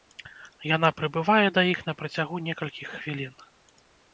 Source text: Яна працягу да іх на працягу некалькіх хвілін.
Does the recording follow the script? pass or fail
fail